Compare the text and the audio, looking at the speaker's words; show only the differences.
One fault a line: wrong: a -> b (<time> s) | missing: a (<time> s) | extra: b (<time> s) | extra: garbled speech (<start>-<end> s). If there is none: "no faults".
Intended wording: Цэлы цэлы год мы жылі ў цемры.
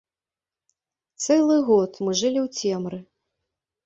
missing: цэлы (1.6 s)